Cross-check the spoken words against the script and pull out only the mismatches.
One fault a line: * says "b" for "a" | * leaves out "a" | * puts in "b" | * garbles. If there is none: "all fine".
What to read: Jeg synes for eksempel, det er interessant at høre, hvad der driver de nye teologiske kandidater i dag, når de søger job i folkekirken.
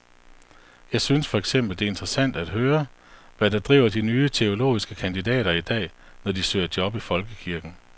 all fine